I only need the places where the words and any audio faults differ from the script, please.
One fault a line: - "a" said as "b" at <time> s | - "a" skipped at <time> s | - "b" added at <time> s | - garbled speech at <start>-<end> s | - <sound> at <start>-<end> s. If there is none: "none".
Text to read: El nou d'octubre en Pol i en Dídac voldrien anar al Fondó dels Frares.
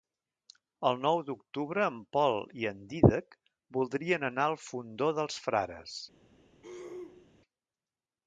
- throat clearing at 6.6-7.3 s